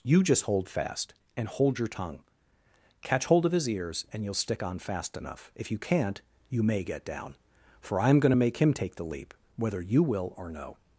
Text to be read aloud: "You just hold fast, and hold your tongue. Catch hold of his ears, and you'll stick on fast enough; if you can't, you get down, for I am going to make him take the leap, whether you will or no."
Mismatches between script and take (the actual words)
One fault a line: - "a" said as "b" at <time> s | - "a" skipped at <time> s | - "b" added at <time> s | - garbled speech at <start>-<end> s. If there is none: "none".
- "may" added at 6.6 s